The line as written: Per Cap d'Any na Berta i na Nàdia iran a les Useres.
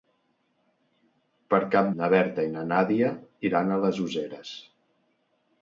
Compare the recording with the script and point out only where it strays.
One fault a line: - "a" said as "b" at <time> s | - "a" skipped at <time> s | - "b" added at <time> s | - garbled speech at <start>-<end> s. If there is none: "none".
- "d'Any" skipped at 1.9 s